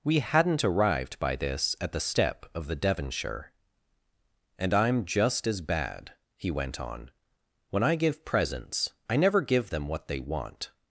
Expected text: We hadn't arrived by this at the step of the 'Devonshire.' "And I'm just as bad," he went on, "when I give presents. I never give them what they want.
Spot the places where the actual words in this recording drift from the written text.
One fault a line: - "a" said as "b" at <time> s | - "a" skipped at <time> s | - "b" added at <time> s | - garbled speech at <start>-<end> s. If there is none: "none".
none